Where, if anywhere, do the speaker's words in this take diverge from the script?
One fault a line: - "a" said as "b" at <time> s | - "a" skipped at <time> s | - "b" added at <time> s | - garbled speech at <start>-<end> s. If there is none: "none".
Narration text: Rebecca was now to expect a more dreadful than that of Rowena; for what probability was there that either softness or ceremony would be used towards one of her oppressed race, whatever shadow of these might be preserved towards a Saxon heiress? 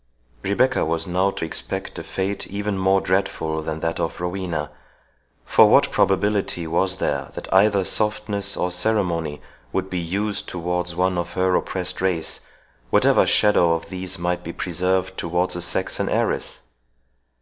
- "fate even" added at 2.0 s